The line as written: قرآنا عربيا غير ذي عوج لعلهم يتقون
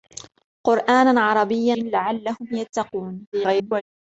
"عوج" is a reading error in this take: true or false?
true